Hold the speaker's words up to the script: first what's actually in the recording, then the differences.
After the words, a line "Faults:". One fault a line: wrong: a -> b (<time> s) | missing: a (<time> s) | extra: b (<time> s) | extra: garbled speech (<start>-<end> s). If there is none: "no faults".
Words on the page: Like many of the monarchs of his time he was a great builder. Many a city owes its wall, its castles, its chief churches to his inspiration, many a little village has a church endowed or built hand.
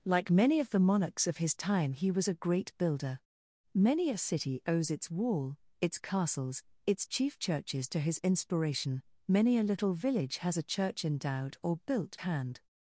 Like many of the monarchs of his time he was a great builder. Many a city owes its wall, its castles, its chief churches to his inspiration, many a little village has a church endowed or built hand.
Faults:
no faults